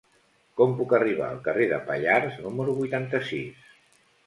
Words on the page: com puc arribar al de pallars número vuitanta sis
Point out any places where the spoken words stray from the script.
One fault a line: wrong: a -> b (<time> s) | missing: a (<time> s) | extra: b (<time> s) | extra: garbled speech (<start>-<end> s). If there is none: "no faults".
extra: carrer (1.5 s)